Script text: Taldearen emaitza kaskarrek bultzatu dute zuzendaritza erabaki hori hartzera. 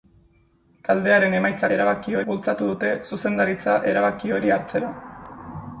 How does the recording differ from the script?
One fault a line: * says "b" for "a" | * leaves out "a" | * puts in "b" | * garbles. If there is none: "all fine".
* says "erabaki" for "kaskarrek"